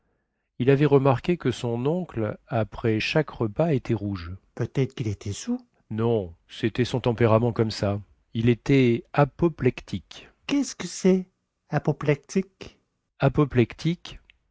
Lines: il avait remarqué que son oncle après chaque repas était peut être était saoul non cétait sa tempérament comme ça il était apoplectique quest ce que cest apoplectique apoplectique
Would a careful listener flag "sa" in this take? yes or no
yes